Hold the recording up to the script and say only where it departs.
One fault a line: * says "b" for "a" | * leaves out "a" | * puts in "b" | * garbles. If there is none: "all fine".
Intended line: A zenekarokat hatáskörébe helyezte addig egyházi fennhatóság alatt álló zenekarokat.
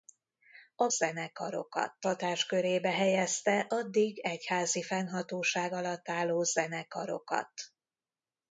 all fine